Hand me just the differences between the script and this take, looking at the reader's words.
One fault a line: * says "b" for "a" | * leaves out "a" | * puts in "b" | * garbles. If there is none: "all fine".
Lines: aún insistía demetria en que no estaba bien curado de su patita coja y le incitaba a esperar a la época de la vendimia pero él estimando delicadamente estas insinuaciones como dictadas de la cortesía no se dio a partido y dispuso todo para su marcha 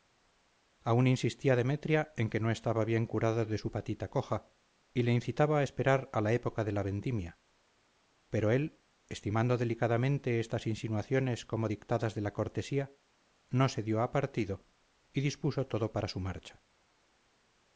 all fine